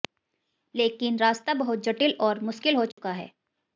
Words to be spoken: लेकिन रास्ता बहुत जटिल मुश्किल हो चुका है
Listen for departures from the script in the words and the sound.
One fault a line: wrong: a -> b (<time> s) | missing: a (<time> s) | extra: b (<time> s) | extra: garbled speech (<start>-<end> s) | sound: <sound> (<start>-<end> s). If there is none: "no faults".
extra: और (2.2 s)
sound: dropout (2.9-3.0 s)